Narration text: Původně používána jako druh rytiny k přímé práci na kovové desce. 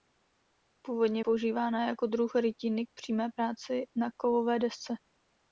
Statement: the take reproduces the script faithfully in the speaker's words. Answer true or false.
true